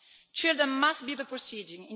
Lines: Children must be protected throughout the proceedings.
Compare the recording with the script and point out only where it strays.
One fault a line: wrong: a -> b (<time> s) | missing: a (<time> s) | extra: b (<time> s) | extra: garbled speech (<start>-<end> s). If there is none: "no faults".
missing: protected throughout (1.1 s)